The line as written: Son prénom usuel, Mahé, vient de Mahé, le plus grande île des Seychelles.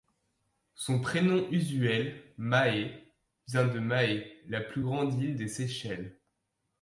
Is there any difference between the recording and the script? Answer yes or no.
yes